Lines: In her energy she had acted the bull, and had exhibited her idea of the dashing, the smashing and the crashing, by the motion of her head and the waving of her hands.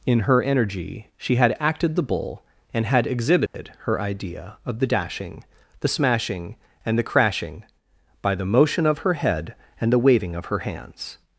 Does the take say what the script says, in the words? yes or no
yes